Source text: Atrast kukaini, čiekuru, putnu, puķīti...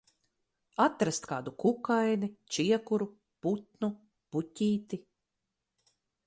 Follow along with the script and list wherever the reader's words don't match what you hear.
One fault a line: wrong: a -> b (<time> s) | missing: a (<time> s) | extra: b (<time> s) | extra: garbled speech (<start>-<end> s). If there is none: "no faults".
extra: kādu (1.3 s)